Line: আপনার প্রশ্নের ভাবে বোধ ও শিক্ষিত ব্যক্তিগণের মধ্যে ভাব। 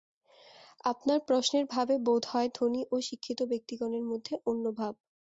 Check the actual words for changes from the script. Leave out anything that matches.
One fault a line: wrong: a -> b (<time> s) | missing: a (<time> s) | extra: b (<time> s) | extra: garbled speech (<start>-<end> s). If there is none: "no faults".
extra: হয় ধনী (2.3 s)
extra: অন্য (4.5 s)